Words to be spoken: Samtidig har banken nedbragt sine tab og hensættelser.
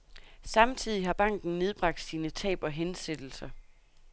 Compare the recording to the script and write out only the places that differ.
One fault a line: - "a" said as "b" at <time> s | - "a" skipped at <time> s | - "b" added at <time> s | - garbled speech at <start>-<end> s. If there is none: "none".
none